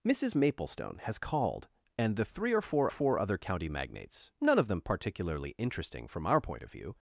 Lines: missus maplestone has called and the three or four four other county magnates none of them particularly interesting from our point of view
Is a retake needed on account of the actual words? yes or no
no